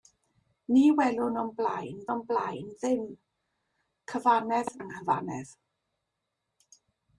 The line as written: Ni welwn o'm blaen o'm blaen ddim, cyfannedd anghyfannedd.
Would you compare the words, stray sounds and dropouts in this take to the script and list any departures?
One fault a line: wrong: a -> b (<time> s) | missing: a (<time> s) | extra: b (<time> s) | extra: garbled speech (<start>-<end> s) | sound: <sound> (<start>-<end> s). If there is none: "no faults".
no faults